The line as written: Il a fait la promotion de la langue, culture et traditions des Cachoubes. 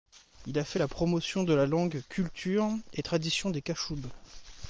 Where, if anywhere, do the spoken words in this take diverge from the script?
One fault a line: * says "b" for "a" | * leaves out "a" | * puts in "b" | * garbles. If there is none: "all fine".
all fine